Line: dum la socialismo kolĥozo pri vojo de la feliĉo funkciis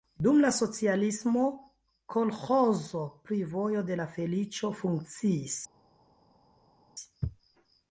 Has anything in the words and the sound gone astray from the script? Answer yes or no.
no